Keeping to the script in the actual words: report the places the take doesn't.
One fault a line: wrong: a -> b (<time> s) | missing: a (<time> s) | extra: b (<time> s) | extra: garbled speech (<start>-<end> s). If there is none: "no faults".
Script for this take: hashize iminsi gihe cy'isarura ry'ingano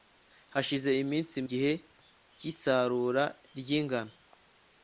no faults